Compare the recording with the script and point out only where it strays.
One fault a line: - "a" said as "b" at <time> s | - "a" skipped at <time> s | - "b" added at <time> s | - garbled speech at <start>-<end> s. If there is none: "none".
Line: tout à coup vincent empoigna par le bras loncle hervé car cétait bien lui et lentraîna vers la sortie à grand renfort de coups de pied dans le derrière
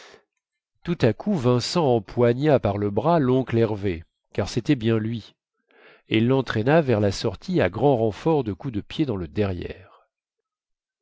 none